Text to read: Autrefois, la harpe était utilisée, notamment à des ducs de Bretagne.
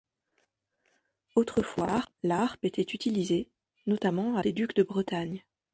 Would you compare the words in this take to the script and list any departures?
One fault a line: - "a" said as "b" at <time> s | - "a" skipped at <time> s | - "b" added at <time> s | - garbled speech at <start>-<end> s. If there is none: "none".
none